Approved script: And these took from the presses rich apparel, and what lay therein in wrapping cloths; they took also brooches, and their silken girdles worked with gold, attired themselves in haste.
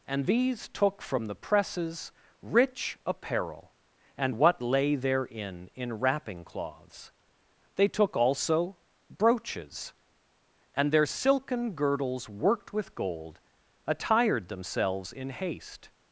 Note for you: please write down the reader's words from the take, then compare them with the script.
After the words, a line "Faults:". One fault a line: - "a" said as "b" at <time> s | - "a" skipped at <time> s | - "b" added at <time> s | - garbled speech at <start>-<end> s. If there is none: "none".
And these took from the presses rich apparel, and what lay therein in wrapping cloths; they took also brooches, and their silken girdles worked with gold, attired themselves in haste.
Faults:
none